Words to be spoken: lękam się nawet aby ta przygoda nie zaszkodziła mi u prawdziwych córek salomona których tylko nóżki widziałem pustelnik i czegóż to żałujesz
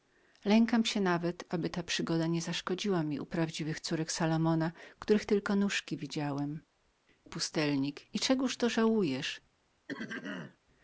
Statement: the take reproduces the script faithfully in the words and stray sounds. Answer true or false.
false